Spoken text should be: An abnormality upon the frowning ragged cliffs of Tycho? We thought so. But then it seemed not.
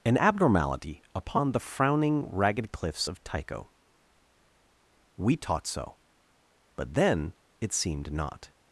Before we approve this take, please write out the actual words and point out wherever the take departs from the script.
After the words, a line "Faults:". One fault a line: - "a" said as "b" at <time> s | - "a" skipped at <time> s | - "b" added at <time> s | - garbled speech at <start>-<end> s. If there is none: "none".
An abnormality upon the frowning ragged cliffs of Tycho? We taught so. But then it seemed not.
Faults:
- "thought" said as "taught" at 5.4 s